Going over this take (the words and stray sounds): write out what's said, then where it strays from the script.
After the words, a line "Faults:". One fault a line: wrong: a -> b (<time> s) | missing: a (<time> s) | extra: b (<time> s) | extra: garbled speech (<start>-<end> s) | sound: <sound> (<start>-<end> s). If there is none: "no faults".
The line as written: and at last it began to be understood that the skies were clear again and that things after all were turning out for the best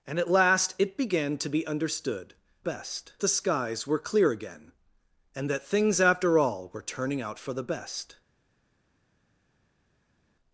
and at last it began to be understood best the skies were clear again and that things after all were turning out for the best
Faults:
wrong: that -> best (2.6 s)